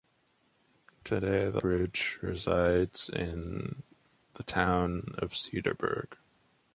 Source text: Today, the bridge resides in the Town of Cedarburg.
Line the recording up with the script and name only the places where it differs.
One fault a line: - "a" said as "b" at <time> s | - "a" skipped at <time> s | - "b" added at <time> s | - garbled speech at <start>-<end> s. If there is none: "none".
none